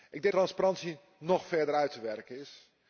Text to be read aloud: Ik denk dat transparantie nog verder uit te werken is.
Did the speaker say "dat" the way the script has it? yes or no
no